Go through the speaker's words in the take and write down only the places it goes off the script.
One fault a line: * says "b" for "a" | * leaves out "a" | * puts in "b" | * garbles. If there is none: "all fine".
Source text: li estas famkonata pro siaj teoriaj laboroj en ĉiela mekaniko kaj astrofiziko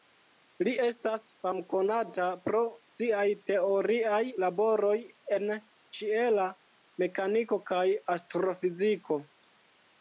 all fine